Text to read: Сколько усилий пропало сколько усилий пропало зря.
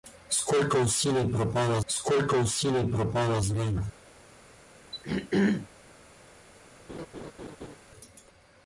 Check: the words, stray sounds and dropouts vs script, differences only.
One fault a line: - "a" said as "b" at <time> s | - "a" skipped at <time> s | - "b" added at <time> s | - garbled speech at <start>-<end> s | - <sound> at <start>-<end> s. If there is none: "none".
- throat clearing at 4.9-5.7 s
- laugh at 6.9-7.8 s